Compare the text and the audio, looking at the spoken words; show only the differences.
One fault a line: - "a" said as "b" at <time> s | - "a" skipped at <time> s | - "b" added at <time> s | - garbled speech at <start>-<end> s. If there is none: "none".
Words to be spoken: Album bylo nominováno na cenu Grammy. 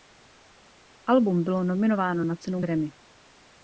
none